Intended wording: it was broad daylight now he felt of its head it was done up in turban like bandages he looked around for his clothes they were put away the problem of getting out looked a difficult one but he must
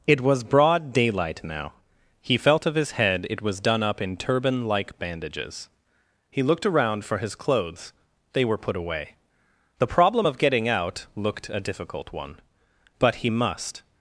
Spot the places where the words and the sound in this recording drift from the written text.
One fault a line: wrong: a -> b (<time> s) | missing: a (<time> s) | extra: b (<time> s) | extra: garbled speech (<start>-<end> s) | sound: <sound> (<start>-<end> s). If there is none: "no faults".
wrong: its -> his (2.7 s)